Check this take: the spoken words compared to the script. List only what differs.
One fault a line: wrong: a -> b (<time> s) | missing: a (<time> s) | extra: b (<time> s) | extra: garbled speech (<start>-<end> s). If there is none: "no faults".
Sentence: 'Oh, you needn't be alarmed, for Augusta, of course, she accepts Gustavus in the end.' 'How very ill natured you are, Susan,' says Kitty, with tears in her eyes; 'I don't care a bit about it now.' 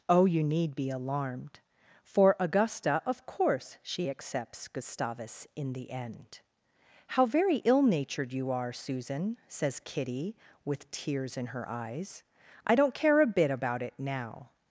wrong: needn't -> need (0.4 s)